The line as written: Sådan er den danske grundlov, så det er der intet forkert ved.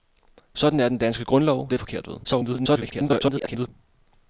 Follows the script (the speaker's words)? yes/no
no